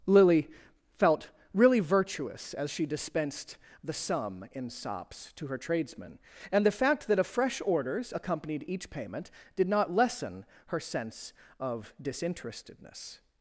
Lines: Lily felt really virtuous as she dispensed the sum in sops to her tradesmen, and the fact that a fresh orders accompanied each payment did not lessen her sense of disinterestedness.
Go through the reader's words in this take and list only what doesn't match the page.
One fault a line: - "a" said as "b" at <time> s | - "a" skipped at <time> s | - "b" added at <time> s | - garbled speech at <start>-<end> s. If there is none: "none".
none